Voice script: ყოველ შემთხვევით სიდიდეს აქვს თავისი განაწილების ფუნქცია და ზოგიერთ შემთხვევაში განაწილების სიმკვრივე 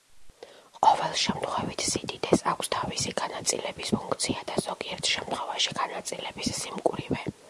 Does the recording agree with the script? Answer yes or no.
yes